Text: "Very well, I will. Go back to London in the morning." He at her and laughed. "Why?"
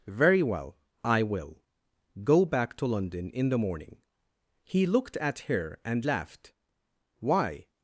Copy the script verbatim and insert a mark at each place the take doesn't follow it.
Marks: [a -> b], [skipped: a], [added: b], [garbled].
"Very well, I will. Go back to London in the morning." He [added: looked] at her and laughed. "Why?"